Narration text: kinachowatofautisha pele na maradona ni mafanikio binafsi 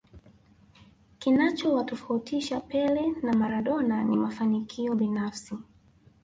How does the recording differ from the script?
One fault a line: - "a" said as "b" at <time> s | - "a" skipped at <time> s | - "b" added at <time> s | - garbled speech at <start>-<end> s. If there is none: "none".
none